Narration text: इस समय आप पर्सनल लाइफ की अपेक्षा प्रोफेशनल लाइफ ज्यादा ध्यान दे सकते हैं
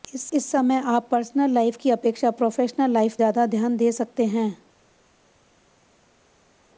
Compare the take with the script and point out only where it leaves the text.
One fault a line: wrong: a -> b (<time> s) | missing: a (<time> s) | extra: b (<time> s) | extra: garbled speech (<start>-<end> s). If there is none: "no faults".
no faults